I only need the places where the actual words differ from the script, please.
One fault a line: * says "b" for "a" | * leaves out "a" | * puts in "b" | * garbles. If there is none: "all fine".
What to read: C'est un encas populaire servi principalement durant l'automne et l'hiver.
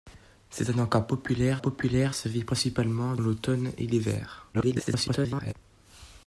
* puts in "populaire"
* leaves out "durant"
* garbles